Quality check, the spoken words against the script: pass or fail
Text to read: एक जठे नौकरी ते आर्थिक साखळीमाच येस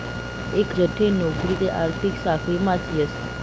pass